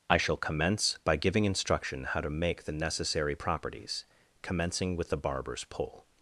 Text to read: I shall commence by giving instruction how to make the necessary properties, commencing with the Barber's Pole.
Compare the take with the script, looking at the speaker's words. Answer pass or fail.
pass